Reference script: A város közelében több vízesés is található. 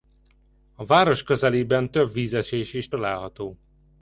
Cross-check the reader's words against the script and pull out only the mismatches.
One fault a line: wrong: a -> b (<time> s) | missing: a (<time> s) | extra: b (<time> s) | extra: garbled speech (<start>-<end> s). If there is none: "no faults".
no faults